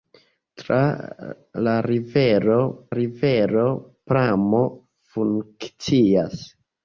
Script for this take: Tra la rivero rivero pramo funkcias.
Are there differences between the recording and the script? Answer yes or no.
no